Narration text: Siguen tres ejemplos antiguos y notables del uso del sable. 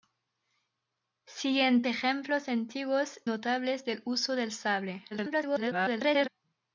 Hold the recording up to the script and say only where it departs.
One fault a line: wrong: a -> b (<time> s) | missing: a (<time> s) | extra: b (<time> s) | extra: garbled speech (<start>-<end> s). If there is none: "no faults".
missing: tres (1.8 s)
missing: y (3.2 s)
extra: garbled speech (5.1-6.3 s)